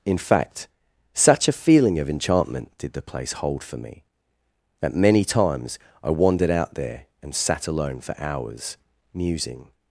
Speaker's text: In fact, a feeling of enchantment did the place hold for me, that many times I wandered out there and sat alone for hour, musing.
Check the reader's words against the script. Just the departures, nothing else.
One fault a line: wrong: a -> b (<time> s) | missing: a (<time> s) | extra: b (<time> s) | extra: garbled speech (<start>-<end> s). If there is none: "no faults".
extra: such (1.1 s)
wrong: hour -> hours (8.2 s)